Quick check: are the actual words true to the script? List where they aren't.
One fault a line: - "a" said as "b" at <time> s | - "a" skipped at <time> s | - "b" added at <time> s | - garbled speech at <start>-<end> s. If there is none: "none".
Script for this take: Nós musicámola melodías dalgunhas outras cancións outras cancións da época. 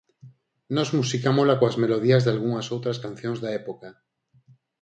- "coas" added at 1.6 s
- "outras cancións" skipped at 3.4 s